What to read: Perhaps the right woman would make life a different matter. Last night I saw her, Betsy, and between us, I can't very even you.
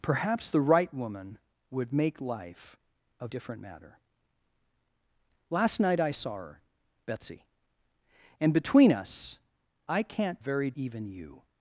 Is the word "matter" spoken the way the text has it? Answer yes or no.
yes